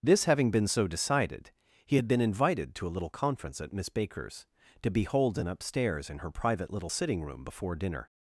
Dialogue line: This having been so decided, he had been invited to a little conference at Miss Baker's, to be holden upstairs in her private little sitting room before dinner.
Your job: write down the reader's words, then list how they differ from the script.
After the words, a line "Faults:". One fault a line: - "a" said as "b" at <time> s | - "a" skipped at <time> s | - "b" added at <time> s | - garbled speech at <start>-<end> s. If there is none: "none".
This having been so decided, he had been invited to a little conference at Miss Baker's, to be holden upstairs in her private little sitting room before dinner.
Faults:
none